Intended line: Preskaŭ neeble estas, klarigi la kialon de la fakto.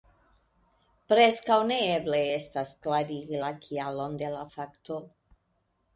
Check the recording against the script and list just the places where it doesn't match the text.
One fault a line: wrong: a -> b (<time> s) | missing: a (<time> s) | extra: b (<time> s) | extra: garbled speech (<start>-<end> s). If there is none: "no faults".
no faults